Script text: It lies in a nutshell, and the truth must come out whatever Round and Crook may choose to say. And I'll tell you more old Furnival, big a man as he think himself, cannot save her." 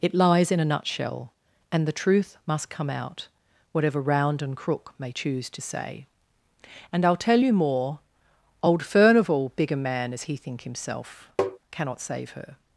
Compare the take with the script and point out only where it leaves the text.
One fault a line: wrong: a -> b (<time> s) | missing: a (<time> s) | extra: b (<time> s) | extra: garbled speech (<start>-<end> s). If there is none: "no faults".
no faults